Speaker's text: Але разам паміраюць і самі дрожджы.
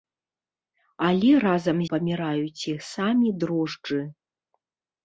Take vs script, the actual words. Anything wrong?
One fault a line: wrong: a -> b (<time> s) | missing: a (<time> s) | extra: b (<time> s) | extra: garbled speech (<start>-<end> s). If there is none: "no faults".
no faults